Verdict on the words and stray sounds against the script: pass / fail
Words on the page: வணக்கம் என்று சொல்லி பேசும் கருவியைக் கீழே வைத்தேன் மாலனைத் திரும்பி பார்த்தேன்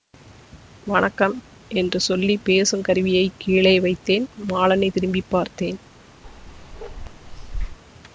fail